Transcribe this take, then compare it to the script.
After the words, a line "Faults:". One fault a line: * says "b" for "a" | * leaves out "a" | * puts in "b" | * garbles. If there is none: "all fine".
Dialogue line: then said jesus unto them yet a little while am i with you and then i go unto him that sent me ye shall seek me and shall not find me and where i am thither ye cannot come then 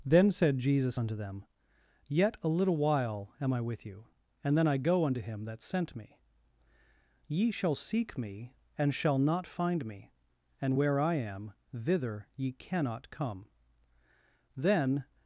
then said jesus unto them yet a little while am i with you and then i go unto him that sent me ye shall seek me and shall not find me and where i am thither ye cannot come then
Faults:
all fine